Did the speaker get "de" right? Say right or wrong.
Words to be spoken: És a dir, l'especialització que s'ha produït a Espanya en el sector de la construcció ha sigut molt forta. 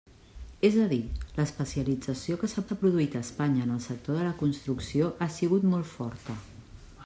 right